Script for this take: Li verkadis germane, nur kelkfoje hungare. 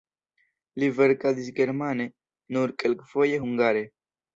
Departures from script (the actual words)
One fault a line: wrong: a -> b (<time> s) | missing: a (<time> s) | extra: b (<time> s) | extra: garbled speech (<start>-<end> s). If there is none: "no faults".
no faults